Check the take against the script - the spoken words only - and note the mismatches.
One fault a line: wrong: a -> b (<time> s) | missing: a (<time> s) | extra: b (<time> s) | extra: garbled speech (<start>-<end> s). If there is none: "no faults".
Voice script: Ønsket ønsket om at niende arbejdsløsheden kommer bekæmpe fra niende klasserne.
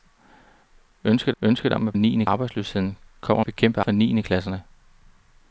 no faults